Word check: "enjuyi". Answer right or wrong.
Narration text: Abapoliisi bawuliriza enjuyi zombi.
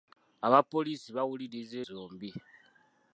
wrong